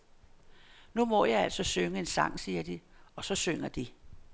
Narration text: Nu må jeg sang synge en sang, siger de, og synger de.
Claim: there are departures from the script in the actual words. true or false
true